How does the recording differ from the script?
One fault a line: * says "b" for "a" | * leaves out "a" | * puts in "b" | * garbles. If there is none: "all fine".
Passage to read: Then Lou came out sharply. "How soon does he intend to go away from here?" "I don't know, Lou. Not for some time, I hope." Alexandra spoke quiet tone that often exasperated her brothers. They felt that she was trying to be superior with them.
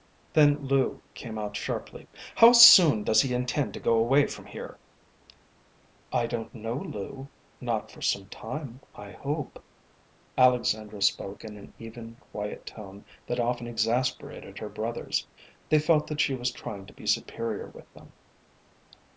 * puts in "in an even"